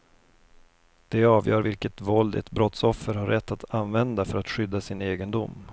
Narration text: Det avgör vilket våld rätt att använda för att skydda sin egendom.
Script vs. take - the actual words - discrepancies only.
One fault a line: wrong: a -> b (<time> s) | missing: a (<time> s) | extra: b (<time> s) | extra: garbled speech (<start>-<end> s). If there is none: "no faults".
extra: ett brottsoffer har (2.3 s)